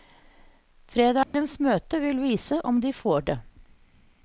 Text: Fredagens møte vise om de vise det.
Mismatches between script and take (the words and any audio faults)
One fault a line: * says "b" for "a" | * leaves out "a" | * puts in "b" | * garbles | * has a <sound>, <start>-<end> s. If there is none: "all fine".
* has a dropout, 1.2-1.3 s
* puts in "vil"
* says "får" for "vise"